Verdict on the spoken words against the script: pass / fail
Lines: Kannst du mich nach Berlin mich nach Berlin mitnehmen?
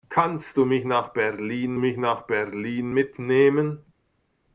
pass